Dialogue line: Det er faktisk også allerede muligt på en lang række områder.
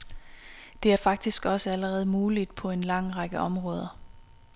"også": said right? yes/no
yes